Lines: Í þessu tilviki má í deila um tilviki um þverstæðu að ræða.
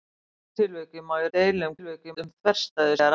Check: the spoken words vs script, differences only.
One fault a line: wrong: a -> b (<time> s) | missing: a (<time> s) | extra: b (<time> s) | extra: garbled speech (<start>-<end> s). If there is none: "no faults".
no faults